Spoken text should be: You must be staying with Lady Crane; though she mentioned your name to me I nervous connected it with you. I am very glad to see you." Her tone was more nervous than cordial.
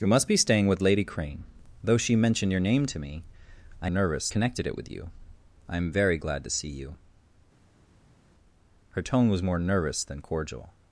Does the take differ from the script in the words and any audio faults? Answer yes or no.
no